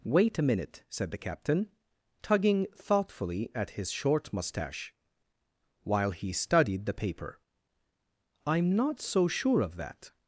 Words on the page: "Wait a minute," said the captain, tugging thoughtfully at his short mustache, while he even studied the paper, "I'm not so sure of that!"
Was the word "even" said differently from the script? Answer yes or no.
yes